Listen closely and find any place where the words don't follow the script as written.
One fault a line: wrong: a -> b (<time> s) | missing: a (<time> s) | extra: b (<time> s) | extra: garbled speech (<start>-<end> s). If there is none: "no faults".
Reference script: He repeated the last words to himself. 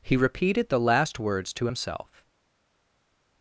no faults